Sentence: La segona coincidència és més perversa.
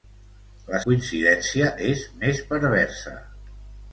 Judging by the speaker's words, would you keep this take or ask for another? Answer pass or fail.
fail